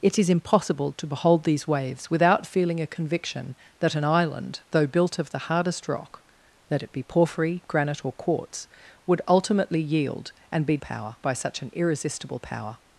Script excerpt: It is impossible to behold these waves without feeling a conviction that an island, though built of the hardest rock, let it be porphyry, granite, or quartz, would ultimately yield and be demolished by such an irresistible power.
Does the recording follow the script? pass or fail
fail